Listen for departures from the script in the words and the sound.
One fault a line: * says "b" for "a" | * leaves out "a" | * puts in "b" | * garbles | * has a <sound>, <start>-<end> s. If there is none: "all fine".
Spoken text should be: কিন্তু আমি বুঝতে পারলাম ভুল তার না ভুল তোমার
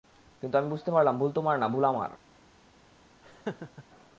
* says "তোমার" for "তার"
* says "আমার" for "তোমার"
* has a laugh, 3.2-3.8 s